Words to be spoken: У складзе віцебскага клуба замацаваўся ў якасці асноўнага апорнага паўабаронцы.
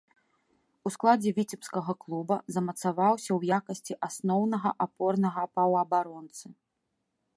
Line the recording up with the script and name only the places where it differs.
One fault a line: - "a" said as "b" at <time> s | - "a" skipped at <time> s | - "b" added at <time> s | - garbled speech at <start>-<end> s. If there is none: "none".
none